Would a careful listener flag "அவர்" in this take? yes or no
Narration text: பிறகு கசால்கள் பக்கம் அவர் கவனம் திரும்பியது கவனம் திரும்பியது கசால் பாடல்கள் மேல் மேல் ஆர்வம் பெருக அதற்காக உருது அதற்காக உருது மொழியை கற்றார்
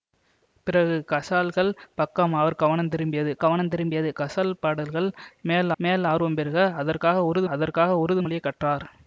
no